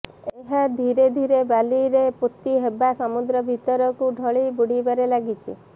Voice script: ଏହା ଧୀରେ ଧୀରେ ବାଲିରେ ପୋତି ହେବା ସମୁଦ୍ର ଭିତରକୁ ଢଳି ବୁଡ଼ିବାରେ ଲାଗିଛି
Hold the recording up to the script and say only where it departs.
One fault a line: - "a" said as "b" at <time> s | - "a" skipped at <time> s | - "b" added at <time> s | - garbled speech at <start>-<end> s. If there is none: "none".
none